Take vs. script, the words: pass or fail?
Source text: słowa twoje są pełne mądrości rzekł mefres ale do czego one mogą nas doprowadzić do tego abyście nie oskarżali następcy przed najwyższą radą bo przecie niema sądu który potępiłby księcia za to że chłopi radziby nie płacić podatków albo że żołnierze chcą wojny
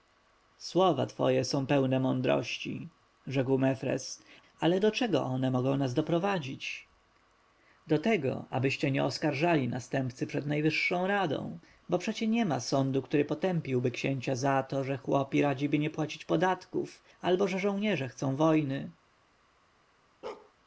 pass